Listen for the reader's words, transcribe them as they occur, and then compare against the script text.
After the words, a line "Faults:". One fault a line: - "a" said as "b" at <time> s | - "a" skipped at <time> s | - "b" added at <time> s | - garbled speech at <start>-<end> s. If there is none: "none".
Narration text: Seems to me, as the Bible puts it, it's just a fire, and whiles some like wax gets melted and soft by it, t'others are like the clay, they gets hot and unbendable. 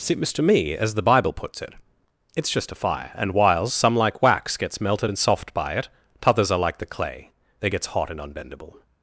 Seems to me, as the Bible puts it, it's just a fire, and whiles some like wax gets melted and soft by it, t'others are like the clay, they gets hot and unbendable.
Faults:
none